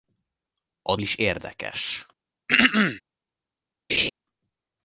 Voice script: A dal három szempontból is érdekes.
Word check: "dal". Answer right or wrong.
wrong